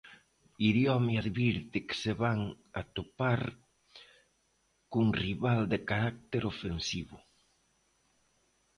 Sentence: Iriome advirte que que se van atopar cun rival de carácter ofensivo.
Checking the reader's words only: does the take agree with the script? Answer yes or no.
no